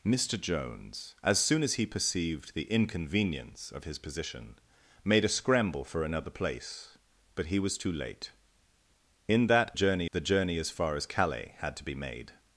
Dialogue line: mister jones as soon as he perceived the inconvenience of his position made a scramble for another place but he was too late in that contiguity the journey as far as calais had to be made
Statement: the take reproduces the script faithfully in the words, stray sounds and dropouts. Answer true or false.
false